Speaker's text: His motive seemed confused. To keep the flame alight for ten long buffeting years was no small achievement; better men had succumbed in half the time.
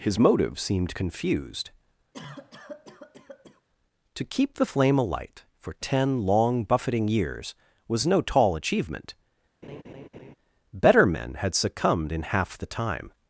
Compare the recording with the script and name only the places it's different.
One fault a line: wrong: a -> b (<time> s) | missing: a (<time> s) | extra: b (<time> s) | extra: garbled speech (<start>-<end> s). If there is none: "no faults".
wrong: small -> tall (8.2 s)